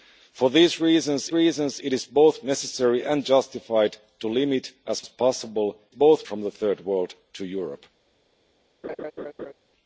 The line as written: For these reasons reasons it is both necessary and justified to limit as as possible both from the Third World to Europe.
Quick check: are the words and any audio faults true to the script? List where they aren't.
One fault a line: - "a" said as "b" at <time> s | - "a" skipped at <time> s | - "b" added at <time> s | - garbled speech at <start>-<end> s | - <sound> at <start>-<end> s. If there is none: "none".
- laugh at 8.8-9.5 s